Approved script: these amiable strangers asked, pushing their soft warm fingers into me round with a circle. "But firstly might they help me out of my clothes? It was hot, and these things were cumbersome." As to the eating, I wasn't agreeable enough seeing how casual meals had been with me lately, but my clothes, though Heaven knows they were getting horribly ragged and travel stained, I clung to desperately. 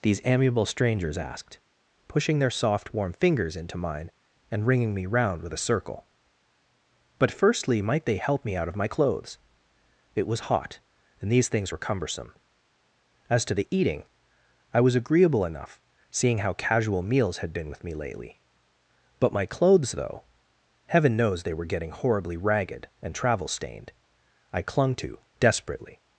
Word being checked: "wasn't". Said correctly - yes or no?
no